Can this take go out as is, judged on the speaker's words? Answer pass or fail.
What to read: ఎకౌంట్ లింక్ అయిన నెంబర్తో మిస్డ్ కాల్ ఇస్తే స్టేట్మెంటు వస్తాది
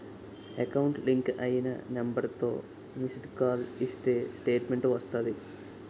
pass